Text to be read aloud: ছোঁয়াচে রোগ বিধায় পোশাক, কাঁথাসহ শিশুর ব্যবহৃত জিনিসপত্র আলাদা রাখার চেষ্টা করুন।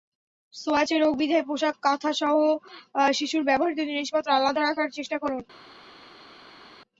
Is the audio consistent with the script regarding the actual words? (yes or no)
yes